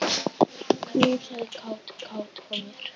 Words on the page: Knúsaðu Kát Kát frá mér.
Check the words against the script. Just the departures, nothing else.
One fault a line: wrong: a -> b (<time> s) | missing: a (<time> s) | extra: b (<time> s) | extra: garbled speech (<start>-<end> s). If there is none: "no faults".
no faults